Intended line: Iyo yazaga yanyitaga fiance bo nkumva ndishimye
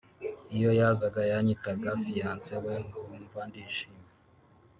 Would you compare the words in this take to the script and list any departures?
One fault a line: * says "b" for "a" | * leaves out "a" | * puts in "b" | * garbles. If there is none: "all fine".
* says "we" for "bo"